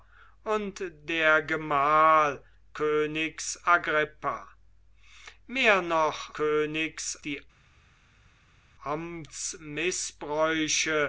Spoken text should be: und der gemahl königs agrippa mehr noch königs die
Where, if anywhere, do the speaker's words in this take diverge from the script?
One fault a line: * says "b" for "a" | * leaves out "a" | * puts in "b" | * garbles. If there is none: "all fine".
all fine